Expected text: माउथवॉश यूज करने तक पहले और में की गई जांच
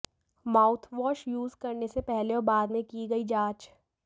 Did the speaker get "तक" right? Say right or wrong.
wrong